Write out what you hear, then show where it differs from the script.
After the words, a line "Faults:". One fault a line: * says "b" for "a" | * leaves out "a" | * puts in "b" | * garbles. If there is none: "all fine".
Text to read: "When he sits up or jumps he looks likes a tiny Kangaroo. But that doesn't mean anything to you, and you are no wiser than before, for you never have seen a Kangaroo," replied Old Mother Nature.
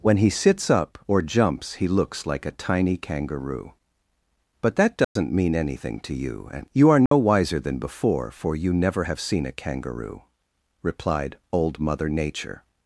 "When he sits up or jumps he looks like a tiny Kangaroo. But that doesn't mean anything to you, and you are no wiser than before, for you never have seen a Kangaroo," replied Old Mother Nature.
Faults:
* says "like" for "likes"